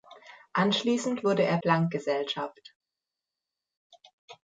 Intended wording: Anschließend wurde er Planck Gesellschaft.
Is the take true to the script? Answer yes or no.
yes